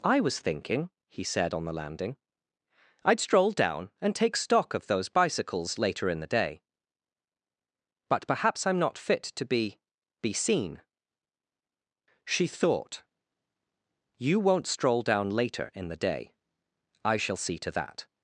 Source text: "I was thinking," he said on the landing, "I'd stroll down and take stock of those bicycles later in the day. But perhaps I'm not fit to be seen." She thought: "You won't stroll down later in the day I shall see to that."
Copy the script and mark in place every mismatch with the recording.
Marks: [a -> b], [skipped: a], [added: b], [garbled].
"I was thinking," he said on the landing, "I'd stroll down and take stock of those bicycles later in the day. But perhaps I'm not fit to be [added: be] seen." She thought: "You won't stroll down later in the day I shall see to that."